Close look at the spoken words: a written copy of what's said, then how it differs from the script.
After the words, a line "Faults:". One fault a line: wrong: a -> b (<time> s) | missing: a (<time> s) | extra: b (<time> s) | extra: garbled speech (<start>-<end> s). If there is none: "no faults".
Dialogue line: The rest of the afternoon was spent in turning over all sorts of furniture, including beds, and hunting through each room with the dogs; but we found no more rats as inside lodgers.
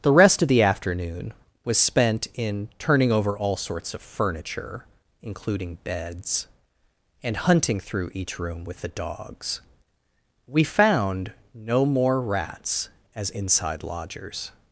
The rest of the afternoon was spent in turning over all sorts of furniture, including beds, and hunting through each room with the dogs; we found no more rats as inside lodgers.
Faults:
missing: but (9.6 s)